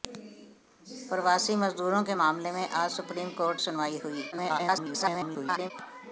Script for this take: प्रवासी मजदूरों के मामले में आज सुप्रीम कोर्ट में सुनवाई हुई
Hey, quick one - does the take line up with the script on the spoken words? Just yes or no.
no